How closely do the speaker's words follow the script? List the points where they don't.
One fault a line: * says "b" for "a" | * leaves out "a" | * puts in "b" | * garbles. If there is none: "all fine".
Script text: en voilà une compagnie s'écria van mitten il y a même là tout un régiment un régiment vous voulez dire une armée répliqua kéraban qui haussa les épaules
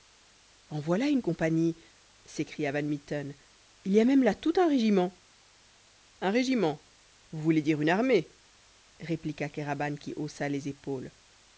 all fine